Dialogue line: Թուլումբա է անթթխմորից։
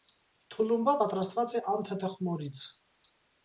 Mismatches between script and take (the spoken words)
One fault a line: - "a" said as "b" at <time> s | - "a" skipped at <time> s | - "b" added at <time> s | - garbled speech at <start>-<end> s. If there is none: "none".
- "պատրաստված" added at 1.0 s